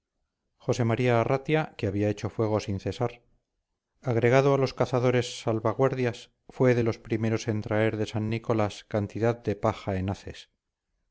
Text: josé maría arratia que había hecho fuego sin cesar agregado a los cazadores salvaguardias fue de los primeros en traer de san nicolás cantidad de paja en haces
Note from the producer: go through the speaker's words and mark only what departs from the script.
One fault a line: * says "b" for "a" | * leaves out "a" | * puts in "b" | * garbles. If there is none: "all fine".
all fine